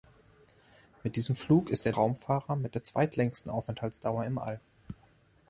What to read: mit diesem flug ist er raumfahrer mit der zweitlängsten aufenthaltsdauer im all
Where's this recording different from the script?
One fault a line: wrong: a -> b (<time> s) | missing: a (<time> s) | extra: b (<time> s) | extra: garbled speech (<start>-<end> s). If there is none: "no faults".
no faults